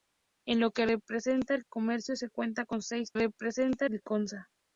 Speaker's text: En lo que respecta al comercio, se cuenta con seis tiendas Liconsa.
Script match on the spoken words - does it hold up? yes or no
no